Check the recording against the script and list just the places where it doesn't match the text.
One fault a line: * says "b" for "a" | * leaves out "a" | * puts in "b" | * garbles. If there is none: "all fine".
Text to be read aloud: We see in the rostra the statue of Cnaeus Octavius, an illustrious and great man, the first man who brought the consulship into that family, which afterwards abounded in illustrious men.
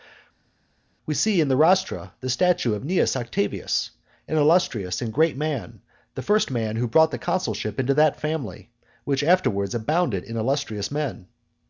all fine